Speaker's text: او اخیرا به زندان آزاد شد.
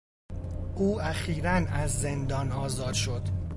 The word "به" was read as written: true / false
false